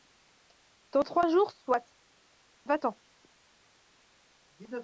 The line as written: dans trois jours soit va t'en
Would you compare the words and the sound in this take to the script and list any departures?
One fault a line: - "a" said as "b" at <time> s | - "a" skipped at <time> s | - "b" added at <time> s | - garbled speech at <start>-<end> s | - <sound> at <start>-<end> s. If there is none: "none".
none